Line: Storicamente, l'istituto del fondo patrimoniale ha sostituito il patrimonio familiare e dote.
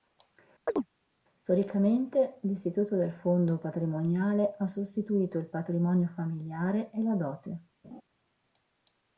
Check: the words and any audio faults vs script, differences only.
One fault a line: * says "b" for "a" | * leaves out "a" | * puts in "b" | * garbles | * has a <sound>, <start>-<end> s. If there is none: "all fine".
* has a chirp, 0.7-0.9 s
* puts in "la"
* has a laugh, 7.8-8.0 s